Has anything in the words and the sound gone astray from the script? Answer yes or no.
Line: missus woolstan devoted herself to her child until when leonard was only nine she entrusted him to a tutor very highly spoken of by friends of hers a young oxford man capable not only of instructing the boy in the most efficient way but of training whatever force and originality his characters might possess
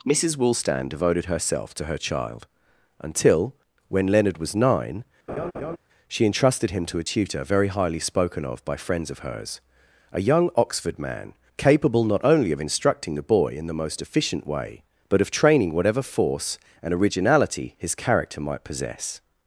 yes